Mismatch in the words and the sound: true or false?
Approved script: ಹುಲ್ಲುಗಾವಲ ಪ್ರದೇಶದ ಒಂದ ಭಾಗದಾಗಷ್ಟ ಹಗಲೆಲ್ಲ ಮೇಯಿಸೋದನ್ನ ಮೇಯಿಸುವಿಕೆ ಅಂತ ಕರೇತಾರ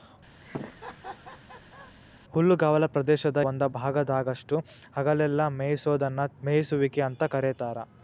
true